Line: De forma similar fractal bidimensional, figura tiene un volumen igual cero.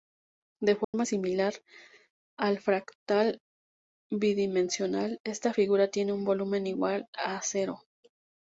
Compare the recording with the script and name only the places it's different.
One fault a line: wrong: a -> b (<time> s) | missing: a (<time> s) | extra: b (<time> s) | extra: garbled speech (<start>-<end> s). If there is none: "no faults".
extra: al (2.4 s)
extra: esta (5.2 s)
extra: a (7.2 s)